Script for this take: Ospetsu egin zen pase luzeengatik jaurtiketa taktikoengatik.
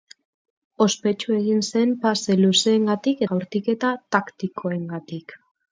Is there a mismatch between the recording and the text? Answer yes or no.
no